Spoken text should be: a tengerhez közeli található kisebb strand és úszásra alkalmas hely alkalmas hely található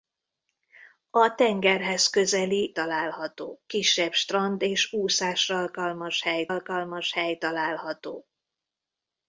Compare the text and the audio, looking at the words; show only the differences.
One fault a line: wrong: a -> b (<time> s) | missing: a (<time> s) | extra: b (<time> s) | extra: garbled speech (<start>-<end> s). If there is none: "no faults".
no faults